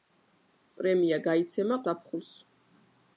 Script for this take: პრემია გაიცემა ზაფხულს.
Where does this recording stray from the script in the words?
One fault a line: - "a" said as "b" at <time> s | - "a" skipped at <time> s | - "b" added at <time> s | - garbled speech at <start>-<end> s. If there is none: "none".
none